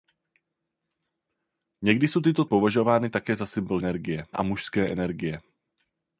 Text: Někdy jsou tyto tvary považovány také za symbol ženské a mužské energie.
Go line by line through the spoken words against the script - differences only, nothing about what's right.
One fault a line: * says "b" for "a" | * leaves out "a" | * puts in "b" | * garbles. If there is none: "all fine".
* leaves out "tvary"
* says "energie" for "ženské"